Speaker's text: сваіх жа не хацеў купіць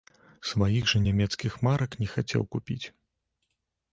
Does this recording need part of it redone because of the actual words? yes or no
yes